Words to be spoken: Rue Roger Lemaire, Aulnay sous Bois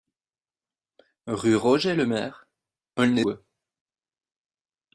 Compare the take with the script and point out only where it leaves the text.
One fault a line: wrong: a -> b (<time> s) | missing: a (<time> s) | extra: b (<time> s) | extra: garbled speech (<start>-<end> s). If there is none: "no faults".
missing: sous (3.2 s)